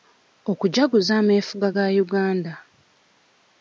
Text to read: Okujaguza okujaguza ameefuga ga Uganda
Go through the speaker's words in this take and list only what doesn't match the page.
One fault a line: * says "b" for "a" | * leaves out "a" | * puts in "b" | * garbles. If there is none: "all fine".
* leaves out "okujaguza"